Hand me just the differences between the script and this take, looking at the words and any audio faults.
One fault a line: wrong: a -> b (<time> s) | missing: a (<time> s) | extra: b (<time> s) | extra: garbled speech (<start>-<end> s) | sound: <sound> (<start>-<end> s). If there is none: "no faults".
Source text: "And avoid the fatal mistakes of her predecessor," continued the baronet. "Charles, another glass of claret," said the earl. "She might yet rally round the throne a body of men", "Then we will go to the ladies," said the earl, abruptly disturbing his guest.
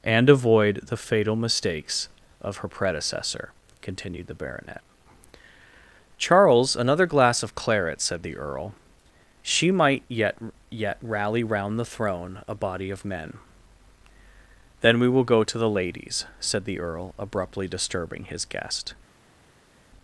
extra: yet (10.7 s)